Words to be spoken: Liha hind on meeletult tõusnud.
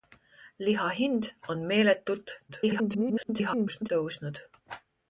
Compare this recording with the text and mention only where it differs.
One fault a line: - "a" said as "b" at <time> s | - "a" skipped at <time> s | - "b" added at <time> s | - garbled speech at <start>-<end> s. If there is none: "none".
- garbled speech at 2.5-3.9 s